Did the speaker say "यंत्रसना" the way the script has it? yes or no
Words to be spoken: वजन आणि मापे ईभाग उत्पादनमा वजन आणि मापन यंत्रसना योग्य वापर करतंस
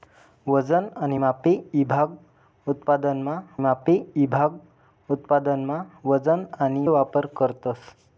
no